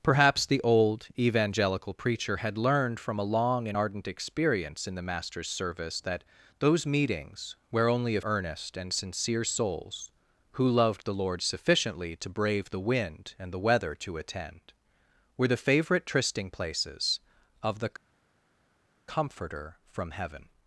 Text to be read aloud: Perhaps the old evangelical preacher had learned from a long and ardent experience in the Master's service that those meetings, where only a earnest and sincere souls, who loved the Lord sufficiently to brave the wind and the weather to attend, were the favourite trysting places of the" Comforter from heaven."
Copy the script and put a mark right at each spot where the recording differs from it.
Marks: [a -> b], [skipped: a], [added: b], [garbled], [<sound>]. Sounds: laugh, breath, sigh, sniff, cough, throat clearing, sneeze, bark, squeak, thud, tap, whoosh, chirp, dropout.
Perhaps the old evangelical preacher had learned from a long and ardent experience in the Master's service that those meetings, where only a earnest and sincere souls, who loved the Lord sufficiently to brave the wind and the weather to attend, were the favourite trysting places of the" Comforter from heaven."